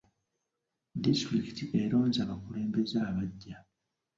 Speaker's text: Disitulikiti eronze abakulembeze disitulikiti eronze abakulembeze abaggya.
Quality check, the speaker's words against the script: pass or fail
fail